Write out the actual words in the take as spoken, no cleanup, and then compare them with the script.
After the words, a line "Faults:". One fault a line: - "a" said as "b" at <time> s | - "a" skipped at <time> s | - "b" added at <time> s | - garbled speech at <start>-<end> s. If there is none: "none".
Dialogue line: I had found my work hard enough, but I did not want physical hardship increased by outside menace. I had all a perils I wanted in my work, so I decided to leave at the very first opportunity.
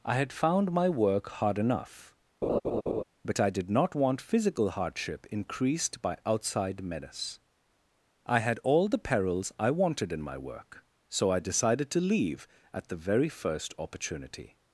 I had found my work hard enough, but I did not want physical hardship increased by outside menace. I had all the perils I wanted in my work, so I decided to leave at the very first opportunity.
Faults:
- "a" said as "the" at 8.9 s